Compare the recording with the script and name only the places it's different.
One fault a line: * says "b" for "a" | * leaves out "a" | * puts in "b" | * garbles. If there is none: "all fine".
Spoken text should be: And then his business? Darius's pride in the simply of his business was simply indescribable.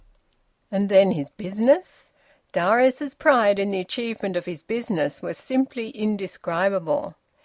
* says "achievement" for "simply"